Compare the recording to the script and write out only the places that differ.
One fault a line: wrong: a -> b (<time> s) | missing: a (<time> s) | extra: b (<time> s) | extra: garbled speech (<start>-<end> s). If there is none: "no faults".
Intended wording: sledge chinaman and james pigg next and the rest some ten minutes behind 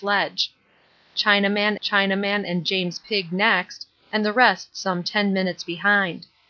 extra: chinaman (1.8 s)